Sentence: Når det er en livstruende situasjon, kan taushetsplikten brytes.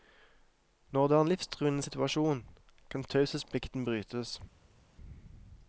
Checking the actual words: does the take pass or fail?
pass